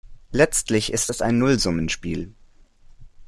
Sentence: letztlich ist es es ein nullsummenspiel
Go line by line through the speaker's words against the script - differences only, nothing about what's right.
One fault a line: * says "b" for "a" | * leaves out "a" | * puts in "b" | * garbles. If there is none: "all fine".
* leaves out "es"